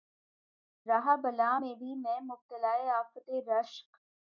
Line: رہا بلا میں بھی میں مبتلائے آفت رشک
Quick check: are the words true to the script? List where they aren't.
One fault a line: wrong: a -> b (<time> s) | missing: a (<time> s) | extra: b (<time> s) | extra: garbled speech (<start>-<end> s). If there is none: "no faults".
no faults